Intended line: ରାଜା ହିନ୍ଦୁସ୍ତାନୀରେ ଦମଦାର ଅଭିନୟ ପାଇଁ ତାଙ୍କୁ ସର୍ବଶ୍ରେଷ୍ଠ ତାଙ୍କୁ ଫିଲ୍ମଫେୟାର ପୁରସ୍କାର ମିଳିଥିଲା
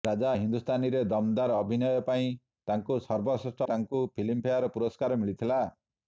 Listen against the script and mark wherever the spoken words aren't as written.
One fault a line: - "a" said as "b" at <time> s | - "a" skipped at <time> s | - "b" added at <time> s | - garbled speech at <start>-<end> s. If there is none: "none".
none